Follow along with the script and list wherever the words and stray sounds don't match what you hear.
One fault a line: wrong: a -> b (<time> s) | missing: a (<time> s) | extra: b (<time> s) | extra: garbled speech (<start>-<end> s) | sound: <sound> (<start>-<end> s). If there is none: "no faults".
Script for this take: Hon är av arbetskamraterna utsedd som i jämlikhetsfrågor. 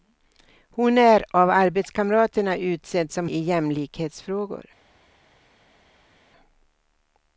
no faults